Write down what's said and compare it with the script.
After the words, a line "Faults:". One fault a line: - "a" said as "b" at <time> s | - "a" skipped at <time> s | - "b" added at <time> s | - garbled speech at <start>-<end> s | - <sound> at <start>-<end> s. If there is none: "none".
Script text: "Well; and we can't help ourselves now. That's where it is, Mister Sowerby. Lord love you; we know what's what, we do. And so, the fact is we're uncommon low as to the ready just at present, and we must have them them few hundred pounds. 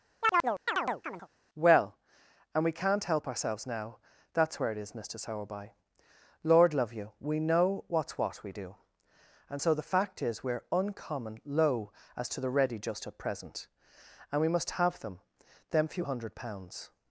"Well; and we can't help ourselves now. That's where it is, Mister Sowerby. Lord love you; we know what's what, we do. And so, the fact is we're uncommon low as to the ready just at present, and we must have them them few hundred pounds.
Faults:
- chirp at 0.2-1.3 s